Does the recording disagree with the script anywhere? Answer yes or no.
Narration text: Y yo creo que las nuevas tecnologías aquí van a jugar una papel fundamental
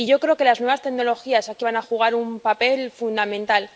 yes